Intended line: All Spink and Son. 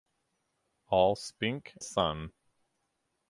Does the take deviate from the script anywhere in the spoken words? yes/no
yes